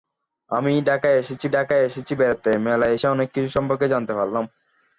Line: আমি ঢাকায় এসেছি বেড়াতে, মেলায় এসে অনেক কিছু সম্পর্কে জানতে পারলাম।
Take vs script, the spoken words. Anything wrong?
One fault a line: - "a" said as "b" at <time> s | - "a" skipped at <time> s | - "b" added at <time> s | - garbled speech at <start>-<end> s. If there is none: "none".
- "ঢাকায় এসেছি" added at 1.5 s